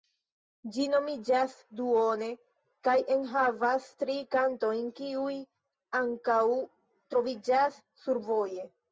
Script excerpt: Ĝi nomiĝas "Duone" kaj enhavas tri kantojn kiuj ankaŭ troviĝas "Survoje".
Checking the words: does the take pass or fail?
pass